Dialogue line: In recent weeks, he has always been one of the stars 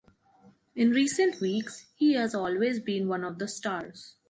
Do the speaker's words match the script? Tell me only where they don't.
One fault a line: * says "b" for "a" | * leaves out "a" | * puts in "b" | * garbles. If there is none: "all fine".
all fine